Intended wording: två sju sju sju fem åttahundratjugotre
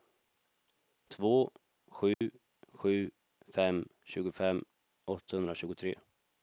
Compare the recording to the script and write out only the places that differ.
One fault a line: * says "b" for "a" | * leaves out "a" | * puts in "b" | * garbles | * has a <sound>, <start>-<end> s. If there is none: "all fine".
* has a dropout, 2.1-2.2 s
* says "fem tjugofem" for "sju fem"